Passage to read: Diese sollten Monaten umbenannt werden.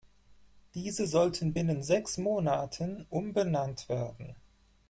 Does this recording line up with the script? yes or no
no